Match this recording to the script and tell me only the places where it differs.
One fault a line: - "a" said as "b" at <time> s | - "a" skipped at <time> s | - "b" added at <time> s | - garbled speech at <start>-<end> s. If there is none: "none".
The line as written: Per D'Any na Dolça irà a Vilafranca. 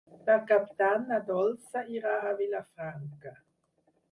- "Cap" added at 0.5 s